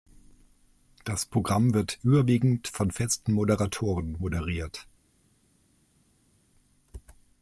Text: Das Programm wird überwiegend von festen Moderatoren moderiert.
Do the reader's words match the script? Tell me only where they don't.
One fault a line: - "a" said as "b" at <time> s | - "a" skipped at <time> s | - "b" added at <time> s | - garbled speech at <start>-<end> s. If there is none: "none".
none